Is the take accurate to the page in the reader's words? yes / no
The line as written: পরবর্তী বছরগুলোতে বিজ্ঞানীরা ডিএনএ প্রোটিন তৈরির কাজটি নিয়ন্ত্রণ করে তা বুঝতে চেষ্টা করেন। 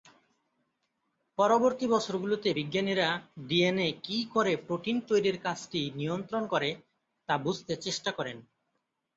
no